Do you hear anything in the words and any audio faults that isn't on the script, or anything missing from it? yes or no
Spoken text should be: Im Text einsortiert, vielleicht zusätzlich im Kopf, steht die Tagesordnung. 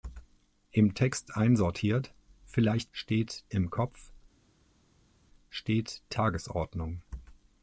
yes